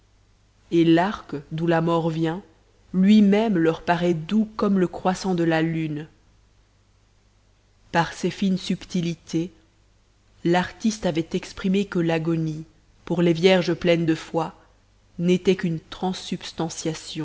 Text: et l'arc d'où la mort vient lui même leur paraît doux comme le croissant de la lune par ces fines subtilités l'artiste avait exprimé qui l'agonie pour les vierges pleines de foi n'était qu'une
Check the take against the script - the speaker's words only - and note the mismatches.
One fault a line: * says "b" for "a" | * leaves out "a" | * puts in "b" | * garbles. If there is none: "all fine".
* says "que" for "qui"